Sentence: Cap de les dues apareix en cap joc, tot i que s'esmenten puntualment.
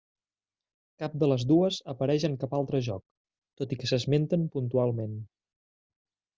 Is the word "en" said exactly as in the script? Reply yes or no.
yes